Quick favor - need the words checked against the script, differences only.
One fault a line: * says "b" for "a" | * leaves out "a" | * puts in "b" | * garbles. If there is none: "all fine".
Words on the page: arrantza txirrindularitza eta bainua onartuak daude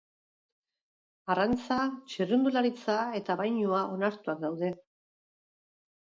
all fine